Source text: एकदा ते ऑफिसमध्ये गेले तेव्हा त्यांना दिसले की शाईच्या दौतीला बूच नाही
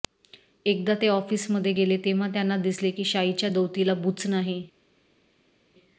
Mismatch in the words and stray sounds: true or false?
false